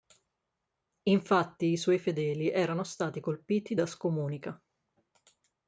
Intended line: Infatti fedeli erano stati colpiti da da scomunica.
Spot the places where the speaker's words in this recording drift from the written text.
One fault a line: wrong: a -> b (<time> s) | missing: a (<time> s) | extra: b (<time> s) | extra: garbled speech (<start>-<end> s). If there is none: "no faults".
extra: i suoi (1.7 s)
missing: da (3.9 s)